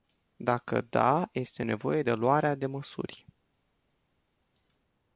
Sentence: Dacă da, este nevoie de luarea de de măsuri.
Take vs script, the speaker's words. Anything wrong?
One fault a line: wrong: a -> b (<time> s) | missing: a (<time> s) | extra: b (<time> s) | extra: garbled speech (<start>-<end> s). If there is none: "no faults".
missing: de (2.7 s)